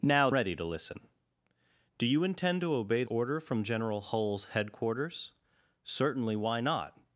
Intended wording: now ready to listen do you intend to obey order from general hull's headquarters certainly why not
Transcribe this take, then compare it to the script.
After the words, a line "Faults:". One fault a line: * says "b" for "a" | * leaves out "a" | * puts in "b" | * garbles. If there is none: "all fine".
now ready to listen do you intend to obey order from general hull's headquarters certainly why not
Faults:
all fine